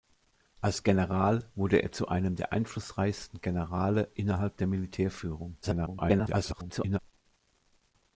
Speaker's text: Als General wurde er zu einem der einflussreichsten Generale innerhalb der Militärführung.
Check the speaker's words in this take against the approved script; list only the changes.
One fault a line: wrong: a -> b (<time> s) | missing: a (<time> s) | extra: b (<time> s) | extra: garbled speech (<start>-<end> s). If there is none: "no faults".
extra: garbled speech (5.6-7.0 s)